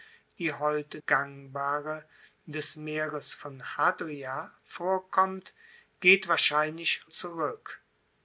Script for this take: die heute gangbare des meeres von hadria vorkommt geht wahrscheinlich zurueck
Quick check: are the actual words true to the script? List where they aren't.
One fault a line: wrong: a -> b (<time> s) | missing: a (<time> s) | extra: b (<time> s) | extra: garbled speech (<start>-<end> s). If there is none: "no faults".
no faults